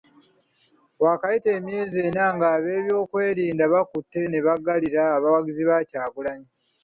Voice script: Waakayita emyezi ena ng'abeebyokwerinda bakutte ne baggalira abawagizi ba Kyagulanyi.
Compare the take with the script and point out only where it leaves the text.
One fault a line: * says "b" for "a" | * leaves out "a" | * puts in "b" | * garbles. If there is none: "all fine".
all fine